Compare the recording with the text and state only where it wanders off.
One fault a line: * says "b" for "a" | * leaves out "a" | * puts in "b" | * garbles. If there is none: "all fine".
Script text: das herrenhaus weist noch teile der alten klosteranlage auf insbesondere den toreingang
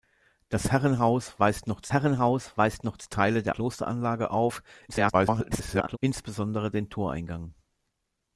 * puts in "herrenhaus weist noch"
* leaves out "alten"
* garbles